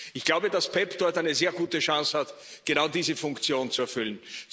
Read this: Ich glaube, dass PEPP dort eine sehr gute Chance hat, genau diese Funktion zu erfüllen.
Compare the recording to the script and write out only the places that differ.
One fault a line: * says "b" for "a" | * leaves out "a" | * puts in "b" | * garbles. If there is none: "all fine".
all fine